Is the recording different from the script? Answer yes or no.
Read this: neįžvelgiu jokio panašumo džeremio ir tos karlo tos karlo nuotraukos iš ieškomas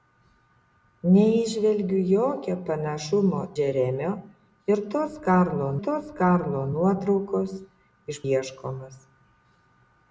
no